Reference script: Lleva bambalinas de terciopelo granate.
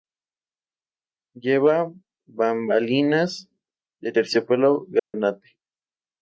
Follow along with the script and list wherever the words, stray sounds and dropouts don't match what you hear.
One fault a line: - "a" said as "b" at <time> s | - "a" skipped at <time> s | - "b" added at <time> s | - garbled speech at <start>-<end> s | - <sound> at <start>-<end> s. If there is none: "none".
- dropout at 5.0-5.1 s